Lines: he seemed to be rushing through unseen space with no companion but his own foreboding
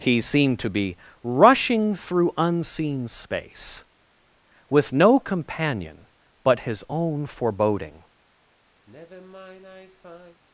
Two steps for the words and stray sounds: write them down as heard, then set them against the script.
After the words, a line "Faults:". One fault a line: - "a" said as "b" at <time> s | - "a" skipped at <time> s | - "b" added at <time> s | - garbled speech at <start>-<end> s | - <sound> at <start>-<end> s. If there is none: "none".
he seemed to be rushing through unseen space with no companion but his own foreboding
Faults:
- sigh at 8.9-10.4 s